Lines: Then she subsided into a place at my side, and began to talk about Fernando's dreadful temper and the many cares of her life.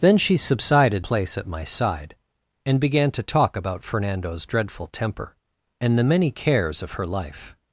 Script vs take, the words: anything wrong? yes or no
yes